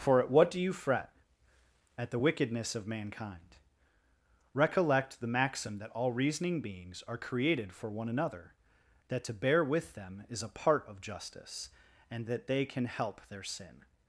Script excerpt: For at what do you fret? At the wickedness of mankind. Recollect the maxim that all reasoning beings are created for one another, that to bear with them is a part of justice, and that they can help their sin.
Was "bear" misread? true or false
false